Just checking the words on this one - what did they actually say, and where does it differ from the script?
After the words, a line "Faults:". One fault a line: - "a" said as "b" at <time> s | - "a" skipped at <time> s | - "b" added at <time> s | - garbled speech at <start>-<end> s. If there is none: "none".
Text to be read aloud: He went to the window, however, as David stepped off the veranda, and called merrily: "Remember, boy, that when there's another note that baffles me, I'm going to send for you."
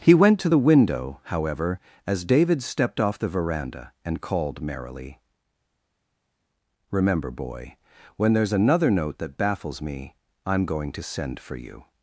He went to the window, however, as David stepped off the veranda, and called merrily: "Remember, boy, when there's another note that baffles me, I'm going to send for you."
Faults:
- "that" skipped at 7.8 s